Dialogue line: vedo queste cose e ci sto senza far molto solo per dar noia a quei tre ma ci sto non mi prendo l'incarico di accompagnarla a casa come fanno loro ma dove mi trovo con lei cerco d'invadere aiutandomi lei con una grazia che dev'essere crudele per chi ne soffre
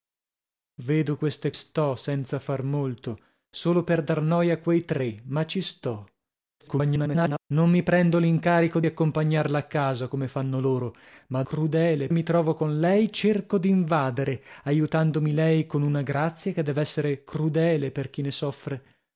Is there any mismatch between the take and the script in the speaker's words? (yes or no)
yes